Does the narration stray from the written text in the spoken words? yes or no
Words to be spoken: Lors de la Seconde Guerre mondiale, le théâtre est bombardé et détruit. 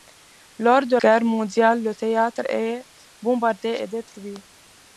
yes